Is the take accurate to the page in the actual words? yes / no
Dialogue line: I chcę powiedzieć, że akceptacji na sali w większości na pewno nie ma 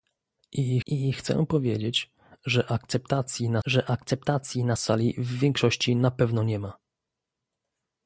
no